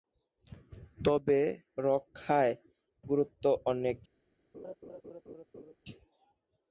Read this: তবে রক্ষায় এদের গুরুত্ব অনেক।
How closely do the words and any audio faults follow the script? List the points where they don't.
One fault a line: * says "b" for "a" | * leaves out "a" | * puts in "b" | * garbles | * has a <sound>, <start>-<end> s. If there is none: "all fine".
* leaves out "এদের"
* has a laugh, 4.5-5.8 s